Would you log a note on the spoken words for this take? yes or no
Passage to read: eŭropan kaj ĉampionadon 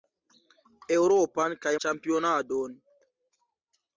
no